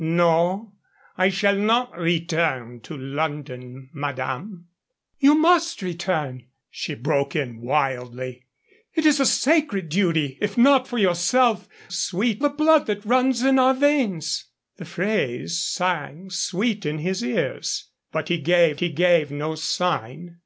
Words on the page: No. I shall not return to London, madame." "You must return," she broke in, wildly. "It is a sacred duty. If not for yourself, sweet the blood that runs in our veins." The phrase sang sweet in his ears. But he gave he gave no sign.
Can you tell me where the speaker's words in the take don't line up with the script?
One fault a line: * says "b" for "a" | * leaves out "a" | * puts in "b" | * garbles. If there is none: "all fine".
all fine